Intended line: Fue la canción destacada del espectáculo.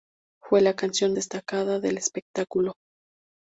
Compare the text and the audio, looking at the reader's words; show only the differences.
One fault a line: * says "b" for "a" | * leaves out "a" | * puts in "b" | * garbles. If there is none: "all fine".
all fine